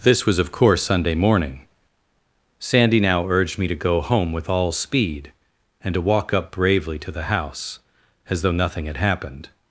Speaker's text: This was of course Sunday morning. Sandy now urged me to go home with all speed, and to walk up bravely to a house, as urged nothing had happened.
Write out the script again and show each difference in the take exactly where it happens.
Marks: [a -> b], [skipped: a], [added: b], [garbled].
This was of course Sunday morning. Sandy now urged me to go home with all speed, and to walk up bravely to [a -> the] house, as [urged -> though] nothing had happened.